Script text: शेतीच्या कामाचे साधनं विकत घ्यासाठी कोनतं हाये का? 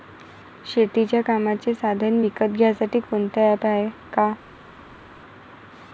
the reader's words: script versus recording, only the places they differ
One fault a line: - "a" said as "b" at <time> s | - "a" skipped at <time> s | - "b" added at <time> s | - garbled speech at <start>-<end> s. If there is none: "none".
- "ॲप" added at 3.5 s